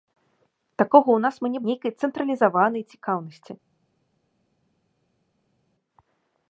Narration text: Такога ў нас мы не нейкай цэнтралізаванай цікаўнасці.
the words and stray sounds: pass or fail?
pass